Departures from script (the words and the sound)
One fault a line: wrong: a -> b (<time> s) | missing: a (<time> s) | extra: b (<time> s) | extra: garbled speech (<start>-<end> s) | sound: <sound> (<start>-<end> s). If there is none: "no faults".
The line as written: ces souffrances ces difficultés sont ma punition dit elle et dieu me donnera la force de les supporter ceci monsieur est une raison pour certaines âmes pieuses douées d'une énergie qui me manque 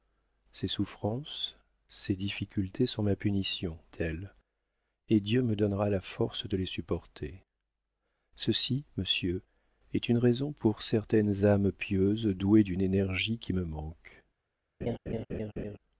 missing: dit (3.8 s)
sound: laugh (14.8-15.8 s)